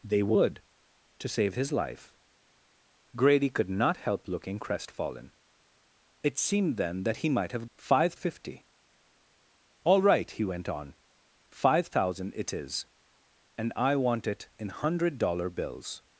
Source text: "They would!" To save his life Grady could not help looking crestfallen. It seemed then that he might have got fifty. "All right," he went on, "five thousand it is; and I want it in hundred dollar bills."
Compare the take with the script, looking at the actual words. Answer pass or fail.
fail